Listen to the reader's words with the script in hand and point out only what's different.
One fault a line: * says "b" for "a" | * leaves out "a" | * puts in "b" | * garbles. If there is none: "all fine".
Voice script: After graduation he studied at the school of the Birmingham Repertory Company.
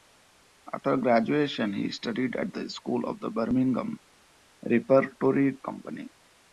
all fine